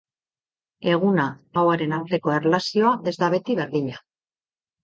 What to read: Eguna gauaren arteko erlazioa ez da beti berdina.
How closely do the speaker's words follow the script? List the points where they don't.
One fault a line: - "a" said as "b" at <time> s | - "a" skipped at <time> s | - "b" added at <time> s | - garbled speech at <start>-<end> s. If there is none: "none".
none